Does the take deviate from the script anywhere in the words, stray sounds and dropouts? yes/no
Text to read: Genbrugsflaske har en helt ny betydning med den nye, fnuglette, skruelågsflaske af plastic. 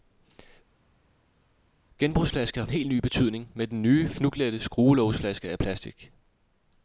no